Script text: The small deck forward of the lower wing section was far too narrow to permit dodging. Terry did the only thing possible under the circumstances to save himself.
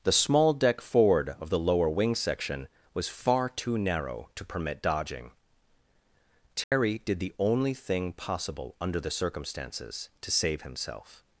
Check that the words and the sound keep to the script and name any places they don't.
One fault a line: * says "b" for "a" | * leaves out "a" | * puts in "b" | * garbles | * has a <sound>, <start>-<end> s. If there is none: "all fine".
* has a dropout, 6.6-6.7 s